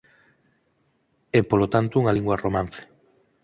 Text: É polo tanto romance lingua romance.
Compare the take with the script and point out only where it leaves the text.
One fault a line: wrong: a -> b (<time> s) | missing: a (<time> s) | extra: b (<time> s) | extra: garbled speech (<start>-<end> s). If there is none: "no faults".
wrong: romance -> unha (2.0 s)